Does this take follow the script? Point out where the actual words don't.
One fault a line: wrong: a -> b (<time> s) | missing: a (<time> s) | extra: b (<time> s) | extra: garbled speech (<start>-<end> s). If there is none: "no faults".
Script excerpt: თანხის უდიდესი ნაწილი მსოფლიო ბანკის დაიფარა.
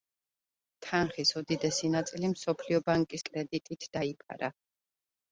extra: კრედიტით (3.3 s)